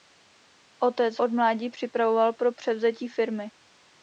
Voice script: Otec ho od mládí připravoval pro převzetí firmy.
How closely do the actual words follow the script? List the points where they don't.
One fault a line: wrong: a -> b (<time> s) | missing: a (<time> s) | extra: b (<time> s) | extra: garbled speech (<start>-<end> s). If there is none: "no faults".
missing: ho (1.2 s)